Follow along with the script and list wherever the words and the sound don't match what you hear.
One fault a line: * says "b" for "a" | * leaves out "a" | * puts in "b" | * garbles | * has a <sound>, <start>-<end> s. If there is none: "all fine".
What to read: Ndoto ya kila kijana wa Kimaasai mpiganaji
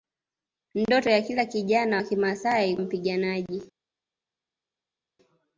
all fine